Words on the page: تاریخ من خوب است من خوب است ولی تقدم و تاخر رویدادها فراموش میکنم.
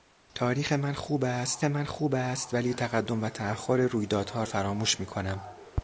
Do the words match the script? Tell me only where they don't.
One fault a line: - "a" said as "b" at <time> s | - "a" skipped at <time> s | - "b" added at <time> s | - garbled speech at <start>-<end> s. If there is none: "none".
none